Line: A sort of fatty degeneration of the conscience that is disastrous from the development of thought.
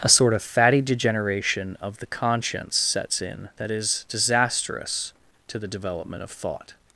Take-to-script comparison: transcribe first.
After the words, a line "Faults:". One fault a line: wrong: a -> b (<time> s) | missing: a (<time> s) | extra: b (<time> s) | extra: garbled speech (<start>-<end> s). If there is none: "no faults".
A sort of fatty degeneration of the conscience sets in that is disastrous to the development of thought.
Faults:
extra: sets in (2.8 s)
wrong: from -> to (5.5 s)